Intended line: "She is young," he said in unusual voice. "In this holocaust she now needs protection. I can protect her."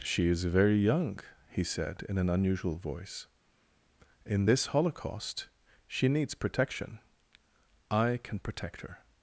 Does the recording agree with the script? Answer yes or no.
no